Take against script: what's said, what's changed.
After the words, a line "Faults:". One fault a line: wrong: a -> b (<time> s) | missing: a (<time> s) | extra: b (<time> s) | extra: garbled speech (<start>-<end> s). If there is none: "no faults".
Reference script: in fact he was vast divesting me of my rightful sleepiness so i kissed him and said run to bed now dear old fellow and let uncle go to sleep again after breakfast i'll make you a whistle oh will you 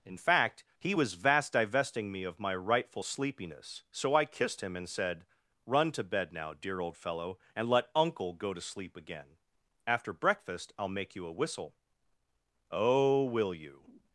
in fact he was vast divesting me of my rightful sleepiness so i kissed him and said run to bed now dear old fellow and let uncle go to sleep again after breakfast i'll make you a whistle oh will you
Faults:
no faults